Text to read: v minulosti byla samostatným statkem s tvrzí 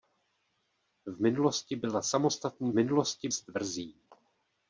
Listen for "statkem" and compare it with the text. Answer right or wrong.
wrong